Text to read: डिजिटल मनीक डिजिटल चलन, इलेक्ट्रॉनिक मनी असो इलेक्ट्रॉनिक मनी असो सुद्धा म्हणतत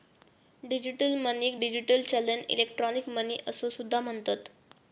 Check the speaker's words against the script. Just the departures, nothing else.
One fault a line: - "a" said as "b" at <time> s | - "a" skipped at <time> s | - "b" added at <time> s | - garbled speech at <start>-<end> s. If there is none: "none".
- "इलेक्ट्रॉनिक मनी असो" skipped at 3.7 s